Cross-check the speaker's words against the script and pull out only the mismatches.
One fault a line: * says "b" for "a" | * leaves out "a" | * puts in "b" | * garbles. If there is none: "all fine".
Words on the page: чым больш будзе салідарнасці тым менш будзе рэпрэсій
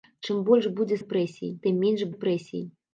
* says "рэпрэсій" for "салідарнасці"
* leaves out "будзе"